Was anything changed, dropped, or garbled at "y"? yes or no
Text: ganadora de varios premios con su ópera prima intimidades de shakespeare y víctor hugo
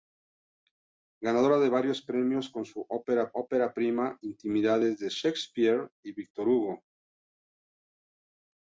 no